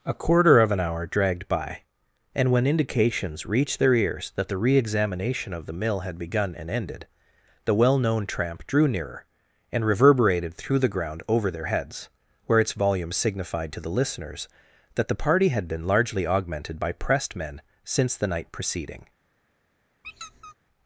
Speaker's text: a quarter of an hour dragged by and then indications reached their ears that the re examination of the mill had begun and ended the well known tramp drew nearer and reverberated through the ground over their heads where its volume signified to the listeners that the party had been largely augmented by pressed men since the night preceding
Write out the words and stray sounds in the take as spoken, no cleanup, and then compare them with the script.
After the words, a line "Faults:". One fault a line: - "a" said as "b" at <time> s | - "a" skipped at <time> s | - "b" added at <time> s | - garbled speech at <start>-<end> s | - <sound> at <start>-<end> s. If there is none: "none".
a quarter of an hour dragged by and when indications reached their ears that the re examination of the mill had begun and ended the well known tramp drew nearer and reverberated through the ground over their heads where its volume signified to the listeners that the party had been largely augmented by pressed men since the night preceding
Faults:
- "then" said as "when" at 2.5 s
- squeak at 20.0-20.5 s